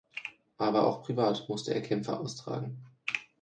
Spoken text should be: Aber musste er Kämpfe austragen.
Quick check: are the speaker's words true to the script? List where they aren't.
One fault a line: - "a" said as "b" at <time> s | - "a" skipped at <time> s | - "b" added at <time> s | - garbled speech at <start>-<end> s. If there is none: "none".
- "auch privat" added at 0.9 s